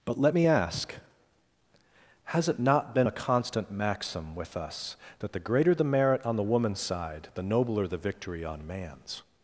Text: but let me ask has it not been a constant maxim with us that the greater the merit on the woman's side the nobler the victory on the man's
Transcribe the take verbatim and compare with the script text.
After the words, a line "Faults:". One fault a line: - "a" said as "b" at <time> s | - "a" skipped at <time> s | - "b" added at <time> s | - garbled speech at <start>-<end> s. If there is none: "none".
but let me ask has it not been a constant maxim with us that the greater the merit on the woman's side the nobler the victory on man's
Faults:
- "the" skipped at 8.6 s